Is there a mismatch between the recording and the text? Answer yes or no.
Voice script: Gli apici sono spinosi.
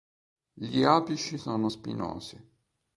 no